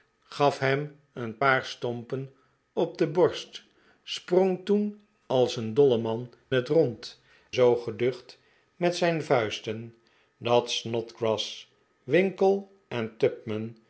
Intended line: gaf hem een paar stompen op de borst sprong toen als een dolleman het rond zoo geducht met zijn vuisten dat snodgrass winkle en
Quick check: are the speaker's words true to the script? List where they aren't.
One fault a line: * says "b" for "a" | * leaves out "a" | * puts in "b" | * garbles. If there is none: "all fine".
all fine